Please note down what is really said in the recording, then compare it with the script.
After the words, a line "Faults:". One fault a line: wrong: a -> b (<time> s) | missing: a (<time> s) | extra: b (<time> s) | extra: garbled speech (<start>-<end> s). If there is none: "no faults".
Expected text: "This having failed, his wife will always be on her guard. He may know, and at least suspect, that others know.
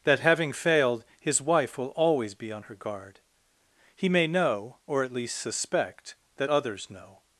"That having failed, his wife will always be on her guard. He may know, or at least suspect, that others know.
Faults:
wrong: This -> That (0.0 s)
wrong: and -> or (4.9 s)